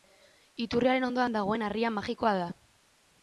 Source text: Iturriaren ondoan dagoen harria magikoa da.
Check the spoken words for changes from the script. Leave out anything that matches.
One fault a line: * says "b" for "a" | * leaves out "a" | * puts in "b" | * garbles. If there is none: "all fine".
all fine